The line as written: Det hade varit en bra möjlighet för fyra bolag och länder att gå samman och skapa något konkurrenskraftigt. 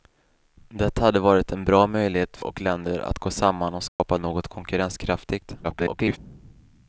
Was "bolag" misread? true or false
true